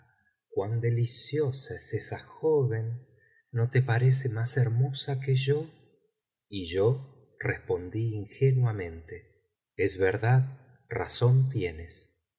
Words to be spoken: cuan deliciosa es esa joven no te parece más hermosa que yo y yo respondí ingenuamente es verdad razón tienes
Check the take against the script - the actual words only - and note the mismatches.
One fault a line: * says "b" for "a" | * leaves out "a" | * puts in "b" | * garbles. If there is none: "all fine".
all fine